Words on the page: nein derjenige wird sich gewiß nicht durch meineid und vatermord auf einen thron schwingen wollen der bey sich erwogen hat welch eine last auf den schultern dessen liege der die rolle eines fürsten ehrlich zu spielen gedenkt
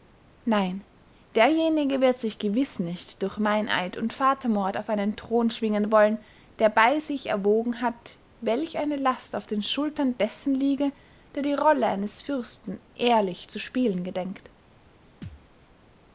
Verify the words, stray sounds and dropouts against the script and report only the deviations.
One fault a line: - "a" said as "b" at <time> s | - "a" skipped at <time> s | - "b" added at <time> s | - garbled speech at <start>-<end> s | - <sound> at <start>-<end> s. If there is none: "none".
- thud at 15.2-15.5 s